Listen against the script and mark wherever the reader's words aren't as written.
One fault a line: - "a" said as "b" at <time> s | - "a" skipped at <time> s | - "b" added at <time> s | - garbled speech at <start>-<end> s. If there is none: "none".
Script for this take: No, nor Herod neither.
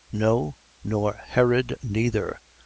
none